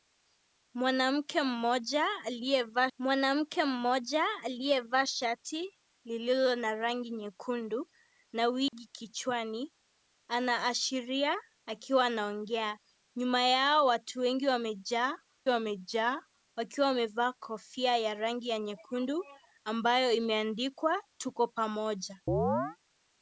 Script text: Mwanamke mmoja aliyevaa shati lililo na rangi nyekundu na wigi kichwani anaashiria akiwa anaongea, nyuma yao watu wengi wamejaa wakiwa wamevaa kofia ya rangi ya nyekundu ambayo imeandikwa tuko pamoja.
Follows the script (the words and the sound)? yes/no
no